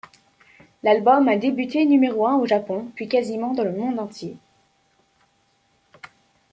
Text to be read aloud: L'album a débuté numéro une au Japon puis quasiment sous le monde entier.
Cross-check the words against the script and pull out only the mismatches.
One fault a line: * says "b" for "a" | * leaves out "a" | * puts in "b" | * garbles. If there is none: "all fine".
* says "un" for "une"
* says "dans" for "sous"